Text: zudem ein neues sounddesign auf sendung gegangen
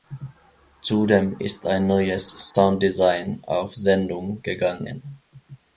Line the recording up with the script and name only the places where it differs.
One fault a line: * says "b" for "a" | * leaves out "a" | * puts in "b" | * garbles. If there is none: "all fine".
* puts in "ist"